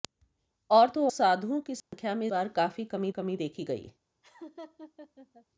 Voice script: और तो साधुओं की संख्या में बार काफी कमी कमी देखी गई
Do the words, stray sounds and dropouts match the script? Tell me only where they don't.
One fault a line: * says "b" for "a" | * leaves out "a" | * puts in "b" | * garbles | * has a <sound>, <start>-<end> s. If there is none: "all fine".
* has a dropout, 1.8-1.9 s
* has a laugh, 4.2-5.5 s